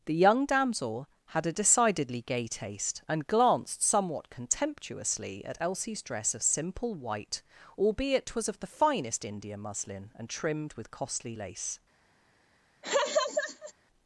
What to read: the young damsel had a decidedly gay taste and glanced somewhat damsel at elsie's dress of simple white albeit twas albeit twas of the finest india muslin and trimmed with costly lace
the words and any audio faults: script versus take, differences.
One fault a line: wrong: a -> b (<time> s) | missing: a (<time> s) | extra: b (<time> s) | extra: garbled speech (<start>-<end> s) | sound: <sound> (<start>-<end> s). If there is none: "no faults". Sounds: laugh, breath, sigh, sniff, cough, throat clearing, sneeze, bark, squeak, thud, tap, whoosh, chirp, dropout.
wrong: damsel -> contemptuously (4.3 s)
missing: albeit twas (8.5 s)
sound: laugh (12.8-13.7 s)